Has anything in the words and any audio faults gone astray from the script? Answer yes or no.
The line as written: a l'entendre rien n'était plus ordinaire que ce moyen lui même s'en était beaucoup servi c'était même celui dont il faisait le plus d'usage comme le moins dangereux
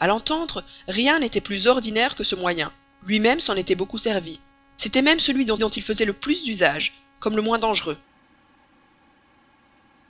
yes